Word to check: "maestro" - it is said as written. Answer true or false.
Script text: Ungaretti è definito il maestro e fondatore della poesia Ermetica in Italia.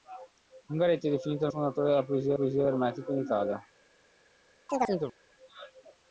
false